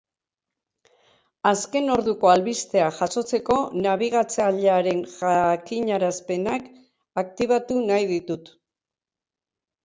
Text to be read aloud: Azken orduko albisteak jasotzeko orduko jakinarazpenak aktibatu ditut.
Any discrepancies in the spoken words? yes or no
yes